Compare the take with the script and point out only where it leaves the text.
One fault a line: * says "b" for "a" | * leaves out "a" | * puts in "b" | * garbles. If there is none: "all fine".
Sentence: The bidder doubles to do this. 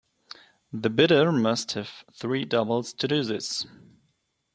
* puts in "must have three"